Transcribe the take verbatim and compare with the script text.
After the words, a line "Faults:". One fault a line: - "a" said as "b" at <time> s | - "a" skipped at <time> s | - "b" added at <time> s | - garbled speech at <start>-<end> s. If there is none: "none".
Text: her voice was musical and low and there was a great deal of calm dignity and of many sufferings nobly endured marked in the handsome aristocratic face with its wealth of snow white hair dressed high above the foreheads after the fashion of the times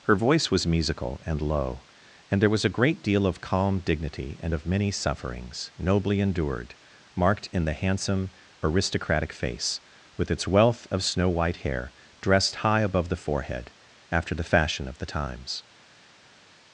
her voice was musical and low and there was a great deal of calm dignity and of many sufferings nobly endured marked in the handsome aristocratic face with its wealth of snow white hair dressed high above the forehead after the fashion of the times
Faults:
- "foreheads" said as "forehead" at 13.2 s